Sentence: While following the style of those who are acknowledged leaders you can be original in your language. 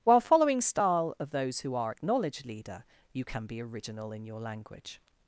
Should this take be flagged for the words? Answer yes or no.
yes